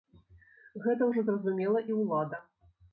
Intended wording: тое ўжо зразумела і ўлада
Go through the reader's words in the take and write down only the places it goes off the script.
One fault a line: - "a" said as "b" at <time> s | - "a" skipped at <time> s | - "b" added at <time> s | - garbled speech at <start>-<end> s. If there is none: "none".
- "тое" said as "гэта" at 0.9 s